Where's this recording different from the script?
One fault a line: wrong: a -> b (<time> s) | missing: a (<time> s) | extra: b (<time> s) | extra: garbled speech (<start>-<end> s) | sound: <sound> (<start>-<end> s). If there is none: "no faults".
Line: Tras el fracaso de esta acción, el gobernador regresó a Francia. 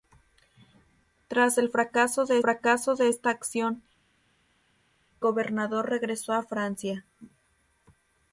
extra: fracaso de (2.4 s)
missing: el (3.8 s)